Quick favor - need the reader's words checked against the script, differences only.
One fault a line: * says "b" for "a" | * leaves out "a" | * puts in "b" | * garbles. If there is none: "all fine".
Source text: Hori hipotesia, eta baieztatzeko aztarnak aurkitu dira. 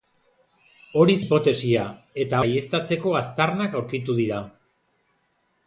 all fine